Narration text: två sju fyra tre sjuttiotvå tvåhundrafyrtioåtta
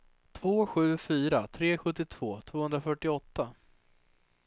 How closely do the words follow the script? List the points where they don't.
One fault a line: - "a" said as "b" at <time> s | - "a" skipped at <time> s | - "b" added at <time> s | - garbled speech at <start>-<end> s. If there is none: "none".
none